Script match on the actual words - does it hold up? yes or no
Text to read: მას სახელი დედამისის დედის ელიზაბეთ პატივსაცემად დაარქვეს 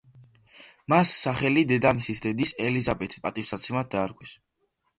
yes